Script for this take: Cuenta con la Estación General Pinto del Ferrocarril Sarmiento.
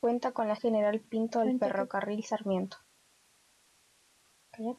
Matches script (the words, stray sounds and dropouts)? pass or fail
fail